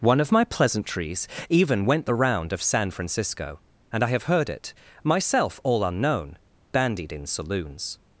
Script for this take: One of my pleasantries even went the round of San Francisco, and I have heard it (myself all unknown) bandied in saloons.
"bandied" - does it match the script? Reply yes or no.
yes